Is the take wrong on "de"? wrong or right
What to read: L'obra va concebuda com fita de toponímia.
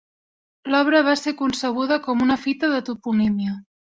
right